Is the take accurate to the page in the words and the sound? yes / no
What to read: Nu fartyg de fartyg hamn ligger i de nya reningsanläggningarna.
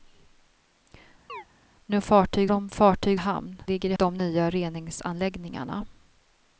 no